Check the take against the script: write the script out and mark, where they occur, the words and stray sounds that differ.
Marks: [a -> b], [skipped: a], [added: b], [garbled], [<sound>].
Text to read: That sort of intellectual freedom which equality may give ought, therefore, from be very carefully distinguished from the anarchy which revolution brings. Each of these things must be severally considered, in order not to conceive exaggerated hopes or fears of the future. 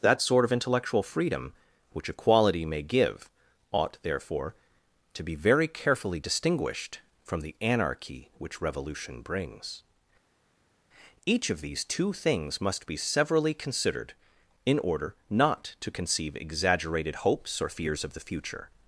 That sort of intellectual freedom which equality may give ought, therefore, [from -> to] be very carefully distinguished from the anarchy which revolution brings. Each of these [added: two] things must be severally considered, in order not to conceive exaggerated hopes or fears of the future.